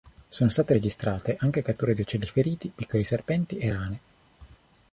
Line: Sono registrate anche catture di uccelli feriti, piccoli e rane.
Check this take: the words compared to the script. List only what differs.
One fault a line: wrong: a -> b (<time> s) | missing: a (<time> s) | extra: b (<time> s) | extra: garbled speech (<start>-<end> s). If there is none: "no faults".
extra: state (0.5 s)
extra: serpenti (3.0 s)